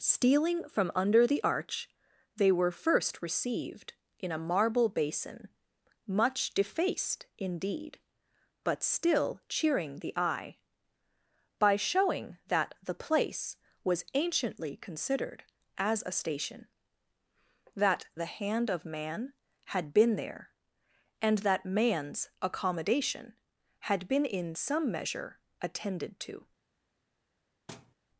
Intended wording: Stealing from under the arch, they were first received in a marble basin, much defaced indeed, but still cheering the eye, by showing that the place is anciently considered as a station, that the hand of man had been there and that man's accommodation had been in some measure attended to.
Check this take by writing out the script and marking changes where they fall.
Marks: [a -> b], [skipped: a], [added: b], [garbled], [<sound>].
Stealing from under the arch, they were first received in a marble basin, much defaced indeed, but still cheering the eye, by showing that the place [is -> was] anciently considered as a station, that the hand of man had been there and that man's accommodation had been in some measure attended to. [thud]